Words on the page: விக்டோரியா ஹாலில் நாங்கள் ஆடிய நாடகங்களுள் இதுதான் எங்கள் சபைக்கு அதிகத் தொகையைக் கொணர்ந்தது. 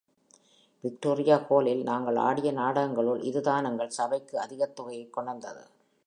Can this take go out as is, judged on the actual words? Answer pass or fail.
pass